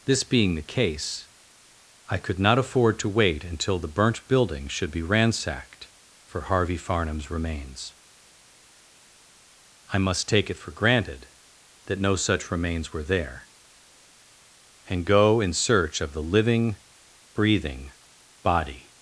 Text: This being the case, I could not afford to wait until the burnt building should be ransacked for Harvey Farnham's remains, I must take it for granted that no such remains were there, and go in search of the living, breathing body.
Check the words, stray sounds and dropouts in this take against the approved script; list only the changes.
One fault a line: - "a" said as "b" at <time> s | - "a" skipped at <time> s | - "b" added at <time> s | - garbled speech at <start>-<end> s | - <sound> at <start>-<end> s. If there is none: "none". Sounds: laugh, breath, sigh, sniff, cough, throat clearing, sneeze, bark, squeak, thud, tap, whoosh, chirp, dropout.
none